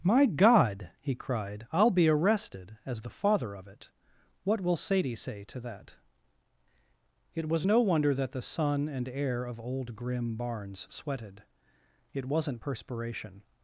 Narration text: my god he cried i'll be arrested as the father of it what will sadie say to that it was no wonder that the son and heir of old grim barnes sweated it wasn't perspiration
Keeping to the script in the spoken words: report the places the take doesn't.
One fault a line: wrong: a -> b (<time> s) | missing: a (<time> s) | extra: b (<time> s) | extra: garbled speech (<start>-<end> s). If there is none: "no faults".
no faults